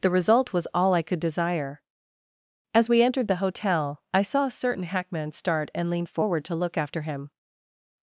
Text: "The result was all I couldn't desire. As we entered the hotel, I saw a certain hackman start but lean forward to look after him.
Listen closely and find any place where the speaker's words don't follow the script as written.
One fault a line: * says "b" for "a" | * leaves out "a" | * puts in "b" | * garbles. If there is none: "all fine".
* says "could" for "couldn't"
* says "and" for "but"